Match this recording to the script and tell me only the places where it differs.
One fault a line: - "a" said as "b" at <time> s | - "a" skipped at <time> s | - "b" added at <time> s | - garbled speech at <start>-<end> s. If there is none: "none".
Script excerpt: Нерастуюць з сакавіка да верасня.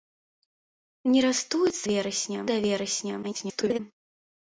- "сакавіка" said as "верасня" at 1.9 s
- garbled speech at 3.2-3.8 s